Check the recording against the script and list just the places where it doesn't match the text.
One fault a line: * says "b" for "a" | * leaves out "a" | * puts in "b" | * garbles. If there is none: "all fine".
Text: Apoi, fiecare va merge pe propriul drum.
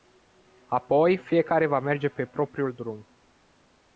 all fine